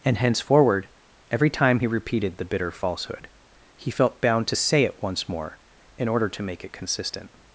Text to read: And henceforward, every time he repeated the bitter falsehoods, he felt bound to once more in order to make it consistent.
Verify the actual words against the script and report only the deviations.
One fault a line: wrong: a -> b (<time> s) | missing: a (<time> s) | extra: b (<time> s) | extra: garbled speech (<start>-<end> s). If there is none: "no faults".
wrong: falsehoods -> falsehood (2.7 s)
extra: say it (4.5 s)